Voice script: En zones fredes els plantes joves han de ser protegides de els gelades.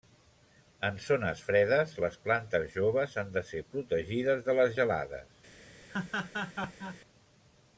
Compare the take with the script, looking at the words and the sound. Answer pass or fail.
fail